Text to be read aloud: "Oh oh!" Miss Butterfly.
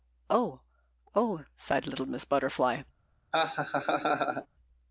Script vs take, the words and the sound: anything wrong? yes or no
yes